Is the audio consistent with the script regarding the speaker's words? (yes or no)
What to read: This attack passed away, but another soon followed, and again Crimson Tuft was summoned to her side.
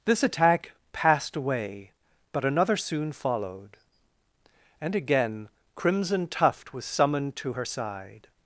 yes